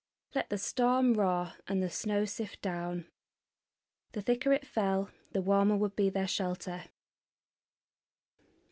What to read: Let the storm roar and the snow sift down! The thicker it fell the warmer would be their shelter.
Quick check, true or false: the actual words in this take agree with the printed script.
true